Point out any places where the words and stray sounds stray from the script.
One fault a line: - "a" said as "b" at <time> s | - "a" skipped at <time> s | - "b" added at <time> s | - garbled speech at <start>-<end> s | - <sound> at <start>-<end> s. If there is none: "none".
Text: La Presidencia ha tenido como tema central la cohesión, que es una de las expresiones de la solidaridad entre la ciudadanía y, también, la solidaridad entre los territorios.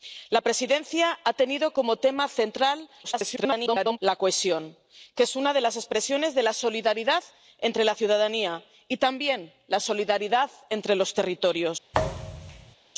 - garbled speech at 3.0-4.0 s
- thud at 11.9-12.8 s